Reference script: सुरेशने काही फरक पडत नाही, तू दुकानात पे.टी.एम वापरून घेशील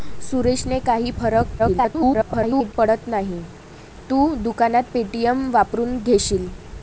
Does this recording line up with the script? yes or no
no